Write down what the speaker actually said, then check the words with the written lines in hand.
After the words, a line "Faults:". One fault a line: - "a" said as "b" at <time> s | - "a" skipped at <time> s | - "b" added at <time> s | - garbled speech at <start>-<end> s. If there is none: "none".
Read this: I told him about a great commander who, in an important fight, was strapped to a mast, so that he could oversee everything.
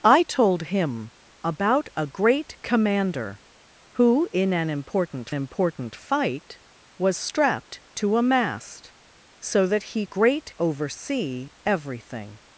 I told him about a great commander who, in an important important fight, was strapped to a mast, so that he great oversee everything.
Faults:
- "important" added at 5.3 s
- "could" said as "great" at 10.0 s